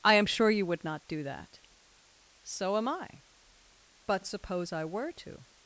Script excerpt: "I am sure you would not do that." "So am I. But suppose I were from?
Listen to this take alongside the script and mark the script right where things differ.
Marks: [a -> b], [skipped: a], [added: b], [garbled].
"I am sure you would not do that." "So am I. But suppose I were [from? -> to]